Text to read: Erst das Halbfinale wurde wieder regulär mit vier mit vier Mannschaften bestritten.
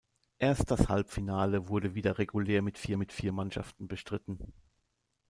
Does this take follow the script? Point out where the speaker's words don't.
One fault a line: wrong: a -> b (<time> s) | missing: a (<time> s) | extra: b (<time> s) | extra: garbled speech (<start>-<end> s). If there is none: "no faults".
no faults